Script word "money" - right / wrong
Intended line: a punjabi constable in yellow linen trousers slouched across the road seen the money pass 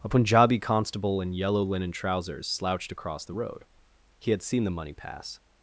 right